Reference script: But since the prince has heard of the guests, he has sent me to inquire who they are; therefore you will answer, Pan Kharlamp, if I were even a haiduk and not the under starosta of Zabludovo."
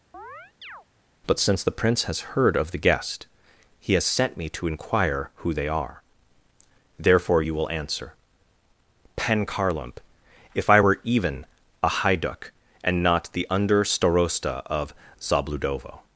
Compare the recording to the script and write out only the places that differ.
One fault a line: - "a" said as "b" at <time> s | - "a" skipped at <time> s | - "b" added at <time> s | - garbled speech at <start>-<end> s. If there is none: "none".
- "guests" said as "guest" at 2.8 s